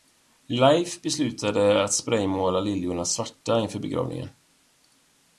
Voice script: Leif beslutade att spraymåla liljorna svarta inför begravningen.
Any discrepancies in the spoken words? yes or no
no